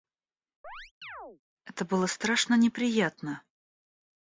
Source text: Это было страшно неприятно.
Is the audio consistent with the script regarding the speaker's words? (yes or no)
yes